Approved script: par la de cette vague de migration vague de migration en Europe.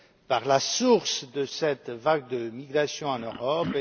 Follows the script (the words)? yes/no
no